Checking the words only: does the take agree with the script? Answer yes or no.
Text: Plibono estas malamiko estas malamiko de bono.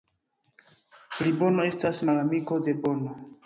no